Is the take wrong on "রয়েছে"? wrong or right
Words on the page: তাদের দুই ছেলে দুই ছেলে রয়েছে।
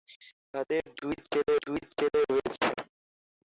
right